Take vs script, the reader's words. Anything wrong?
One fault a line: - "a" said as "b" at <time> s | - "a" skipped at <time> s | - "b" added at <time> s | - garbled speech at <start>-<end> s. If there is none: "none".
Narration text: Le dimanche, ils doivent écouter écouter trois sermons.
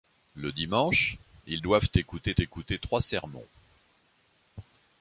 none